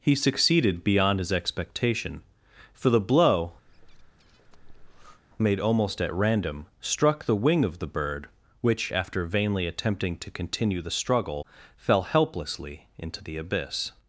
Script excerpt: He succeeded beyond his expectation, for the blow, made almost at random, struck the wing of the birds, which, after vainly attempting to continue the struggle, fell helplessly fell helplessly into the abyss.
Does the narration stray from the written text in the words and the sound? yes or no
yes